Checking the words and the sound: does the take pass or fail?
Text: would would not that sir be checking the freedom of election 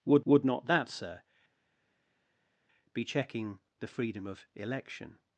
pass